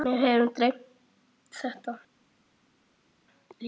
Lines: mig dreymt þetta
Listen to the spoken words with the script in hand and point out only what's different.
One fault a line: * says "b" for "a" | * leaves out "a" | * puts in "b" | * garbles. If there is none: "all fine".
* puts in "hefur"